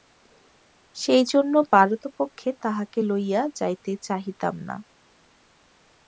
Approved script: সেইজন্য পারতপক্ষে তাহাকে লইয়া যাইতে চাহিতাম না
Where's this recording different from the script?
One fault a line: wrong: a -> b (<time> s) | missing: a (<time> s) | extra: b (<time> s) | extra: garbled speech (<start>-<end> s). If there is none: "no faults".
no faults